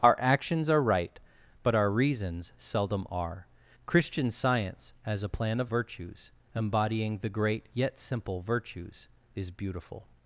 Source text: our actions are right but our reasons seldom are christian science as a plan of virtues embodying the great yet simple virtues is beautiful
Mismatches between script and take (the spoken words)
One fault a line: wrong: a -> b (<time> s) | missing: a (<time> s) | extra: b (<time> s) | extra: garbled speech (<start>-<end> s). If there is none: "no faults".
no faults